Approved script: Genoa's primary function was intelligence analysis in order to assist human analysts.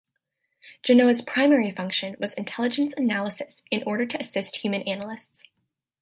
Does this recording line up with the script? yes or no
yes